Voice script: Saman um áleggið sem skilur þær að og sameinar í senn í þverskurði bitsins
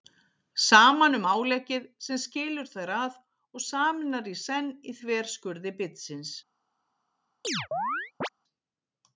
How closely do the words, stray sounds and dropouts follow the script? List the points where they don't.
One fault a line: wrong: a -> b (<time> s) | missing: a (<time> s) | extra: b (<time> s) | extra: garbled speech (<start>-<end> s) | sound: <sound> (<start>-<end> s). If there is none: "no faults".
sound: chirp (7.4-8.3 s)